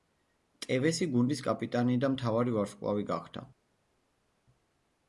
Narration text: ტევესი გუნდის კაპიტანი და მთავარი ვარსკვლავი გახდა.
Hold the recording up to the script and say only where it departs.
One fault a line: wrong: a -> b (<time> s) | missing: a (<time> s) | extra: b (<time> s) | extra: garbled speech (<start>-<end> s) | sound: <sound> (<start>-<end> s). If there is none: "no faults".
no faults